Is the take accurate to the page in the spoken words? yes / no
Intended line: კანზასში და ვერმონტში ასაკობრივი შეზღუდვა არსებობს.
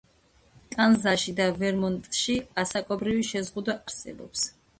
yes